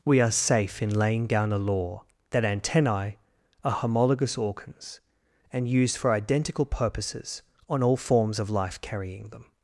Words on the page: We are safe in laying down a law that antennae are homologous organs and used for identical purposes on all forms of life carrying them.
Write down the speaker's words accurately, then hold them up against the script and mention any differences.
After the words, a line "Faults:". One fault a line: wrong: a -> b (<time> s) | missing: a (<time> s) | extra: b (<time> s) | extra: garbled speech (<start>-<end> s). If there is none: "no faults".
We are safe in laying down a law that antennae are homologous organs and used for identical purposes on all forms of life carrying them.
Faults:
no faults